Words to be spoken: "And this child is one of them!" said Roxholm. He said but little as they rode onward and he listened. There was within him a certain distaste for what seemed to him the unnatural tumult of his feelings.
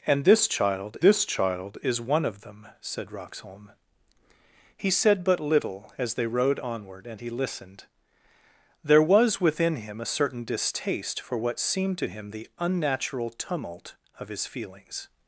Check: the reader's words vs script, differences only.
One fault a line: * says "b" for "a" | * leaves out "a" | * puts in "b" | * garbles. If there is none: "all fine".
* puts in "this child"